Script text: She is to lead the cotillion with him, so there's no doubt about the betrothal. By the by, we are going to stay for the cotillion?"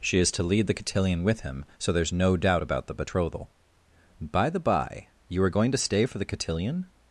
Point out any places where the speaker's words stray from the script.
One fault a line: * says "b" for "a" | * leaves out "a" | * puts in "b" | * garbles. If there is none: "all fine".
* says "you" for "we"